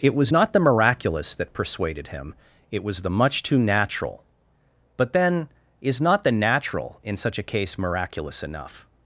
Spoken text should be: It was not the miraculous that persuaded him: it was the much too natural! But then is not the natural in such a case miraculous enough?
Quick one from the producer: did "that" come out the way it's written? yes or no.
yes